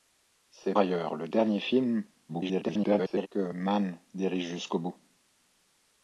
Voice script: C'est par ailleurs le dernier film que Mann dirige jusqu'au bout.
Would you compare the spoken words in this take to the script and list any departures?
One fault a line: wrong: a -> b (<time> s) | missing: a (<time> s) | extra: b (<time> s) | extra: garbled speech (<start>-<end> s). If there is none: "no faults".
missing: par (0.7 s)
extra: garbled speech (2.3-3.3 s)